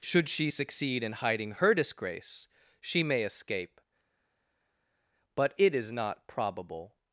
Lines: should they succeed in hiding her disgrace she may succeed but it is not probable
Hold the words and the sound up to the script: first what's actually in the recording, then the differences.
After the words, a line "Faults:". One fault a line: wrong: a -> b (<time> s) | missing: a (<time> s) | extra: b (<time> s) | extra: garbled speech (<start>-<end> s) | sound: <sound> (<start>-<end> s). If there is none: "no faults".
should she succeed in hiding her disgrace she may escape but it is not probable
Faults:
wrong: they -> she (0.3 s)
wrong: succeed -> escape (3.2 s)